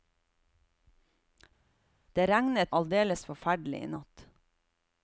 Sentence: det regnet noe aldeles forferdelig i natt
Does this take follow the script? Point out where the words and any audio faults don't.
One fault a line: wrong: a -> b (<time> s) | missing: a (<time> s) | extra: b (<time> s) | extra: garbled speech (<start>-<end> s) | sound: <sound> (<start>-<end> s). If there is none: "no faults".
missing: noe (2.7 s)